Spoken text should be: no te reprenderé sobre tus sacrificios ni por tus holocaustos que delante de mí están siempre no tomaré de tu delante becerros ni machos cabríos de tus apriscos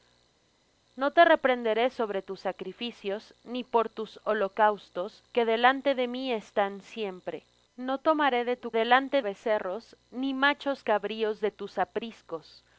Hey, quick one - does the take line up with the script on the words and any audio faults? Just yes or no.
yes